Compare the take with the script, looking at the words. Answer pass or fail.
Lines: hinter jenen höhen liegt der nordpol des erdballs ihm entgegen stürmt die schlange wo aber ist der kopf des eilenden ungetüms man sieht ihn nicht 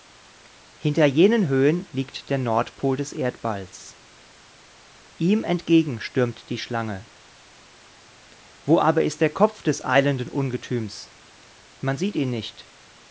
pass